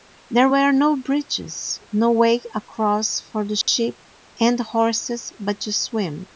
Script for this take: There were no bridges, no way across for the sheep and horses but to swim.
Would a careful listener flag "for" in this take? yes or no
no